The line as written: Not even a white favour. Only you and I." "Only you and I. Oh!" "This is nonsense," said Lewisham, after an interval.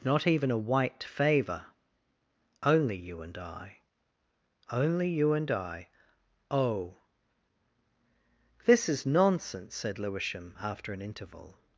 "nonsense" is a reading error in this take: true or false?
false